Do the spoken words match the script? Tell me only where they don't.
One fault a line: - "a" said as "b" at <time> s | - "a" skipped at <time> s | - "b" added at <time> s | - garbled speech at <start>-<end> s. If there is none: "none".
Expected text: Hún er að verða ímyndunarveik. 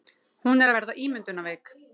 none